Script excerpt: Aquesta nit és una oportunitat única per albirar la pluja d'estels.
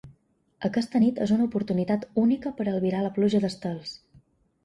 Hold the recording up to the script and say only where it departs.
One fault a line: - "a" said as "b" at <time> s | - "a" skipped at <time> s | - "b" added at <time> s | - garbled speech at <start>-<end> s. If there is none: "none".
none